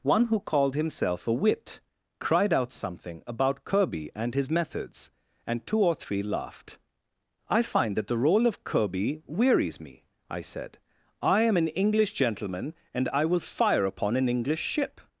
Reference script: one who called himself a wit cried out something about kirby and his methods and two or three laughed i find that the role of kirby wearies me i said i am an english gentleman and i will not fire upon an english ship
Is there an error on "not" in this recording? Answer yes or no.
yes